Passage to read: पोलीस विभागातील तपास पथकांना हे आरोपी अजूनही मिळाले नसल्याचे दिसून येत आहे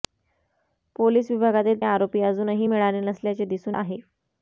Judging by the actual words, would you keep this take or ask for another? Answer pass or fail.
fail